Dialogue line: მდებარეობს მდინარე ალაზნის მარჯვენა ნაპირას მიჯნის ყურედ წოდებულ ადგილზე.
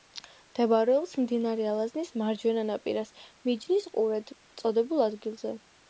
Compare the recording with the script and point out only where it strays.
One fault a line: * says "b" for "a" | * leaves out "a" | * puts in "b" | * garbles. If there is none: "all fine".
all fine